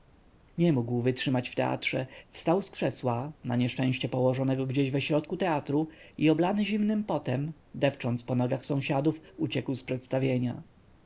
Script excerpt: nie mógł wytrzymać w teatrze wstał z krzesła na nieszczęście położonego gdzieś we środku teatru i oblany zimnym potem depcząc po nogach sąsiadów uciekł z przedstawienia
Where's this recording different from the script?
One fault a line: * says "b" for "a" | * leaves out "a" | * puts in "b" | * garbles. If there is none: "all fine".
all fine